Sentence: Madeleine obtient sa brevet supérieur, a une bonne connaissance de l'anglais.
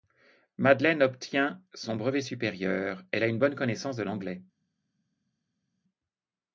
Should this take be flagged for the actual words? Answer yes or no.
yes